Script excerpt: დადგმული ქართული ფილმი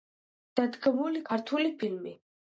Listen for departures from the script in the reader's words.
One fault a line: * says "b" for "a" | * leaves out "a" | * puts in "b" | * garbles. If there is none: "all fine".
all fine